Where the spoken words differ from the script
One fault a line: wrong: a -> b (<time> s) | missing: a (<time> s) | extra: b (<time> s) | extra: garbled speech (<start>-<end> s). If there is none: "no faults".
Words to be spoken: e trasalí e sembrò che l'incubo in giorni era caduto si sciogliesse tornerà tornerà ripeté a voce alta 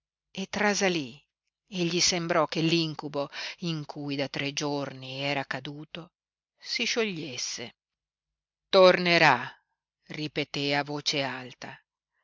extra: gli (1.9 s)
extra: cui da tre (3.9 s)
missing: tornerà (9.5 s)